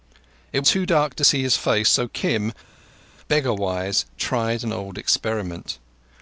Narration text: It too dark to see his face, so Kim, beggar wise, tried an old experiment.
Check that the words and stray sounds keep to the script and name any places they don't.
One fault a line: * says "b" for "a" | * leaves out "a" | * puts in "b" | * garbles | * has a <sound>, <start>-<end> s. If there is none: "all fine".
all fine